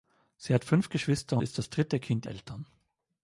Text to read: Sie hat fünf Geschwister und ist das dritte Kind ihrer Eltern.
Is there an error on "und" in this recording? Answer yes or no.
yes